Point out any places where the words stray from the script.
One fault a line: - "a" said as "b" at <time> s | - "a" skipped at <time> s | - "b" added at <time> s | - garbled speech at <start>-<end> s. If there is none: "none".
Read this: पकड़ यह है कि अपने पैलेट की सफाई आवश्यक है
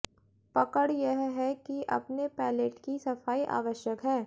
none